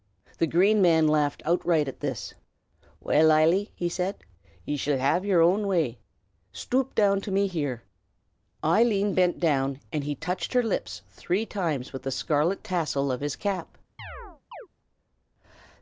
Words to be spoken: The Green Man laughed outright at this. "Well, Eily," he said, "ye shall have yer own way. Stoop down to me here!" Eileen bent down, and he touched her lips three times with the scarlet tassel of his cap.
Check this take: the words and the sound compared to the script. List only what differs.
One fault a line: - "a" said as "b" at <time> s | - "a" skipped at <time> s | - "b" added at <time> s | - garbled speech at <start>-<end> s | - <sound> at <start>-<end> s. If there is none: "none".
- chirp at 14.0-14.7 s